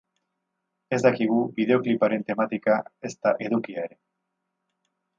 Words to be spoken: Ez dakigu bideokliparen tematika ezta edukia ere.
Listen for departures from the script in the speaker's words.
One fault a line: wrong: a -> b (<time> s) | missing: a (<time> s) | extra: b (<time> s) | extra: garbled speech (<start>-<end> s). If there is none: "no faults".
no faults